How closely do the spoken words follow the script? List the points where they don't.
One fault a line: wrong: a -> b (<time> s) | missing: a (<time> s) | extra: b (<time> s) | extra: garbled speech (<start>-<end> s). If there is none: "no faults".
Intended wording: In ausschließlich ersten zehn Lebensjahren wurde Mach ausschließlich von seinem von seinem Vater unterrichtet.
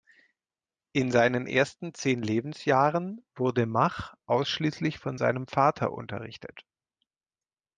wrong: ausschließlich -> seinen (1.1 s)
missing: von seinem (5.5 s)